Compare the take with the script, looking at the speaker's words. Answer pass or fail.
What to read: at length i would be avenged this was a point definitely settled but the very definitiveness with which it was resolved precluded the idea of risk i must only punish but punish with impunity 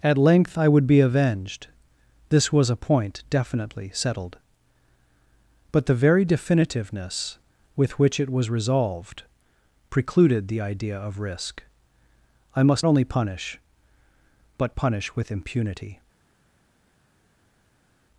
pass